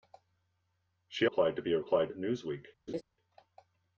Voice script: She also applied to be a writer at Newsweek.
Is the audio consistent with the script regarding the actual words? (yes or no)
no